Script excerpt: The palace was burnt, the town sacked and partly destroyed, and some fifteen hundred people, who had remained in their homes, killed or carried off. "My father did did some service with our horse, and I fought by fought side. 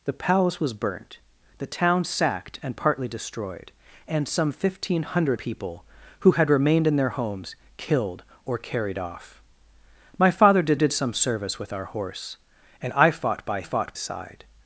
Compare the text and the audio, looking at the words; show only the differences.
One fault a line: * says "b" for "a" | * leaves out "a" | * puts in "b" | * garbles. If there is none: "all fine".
all fine